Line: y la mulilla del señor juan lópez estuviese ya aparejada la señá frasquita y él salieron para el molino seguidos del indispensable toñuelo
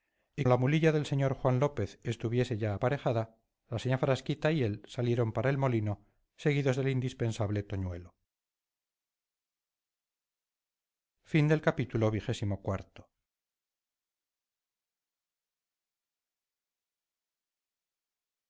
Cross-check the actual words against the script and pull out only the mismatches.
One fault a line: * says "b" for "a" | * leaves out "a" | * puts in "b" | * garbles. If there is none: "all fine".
all fine